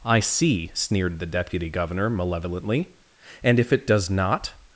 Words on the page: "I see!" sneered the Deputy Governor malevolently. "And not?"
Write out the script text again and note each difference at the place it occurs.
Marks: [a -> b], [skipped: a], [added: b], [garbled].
"I see!" sneered the Deputy Governor malevolently. "And [added: if it does] not?"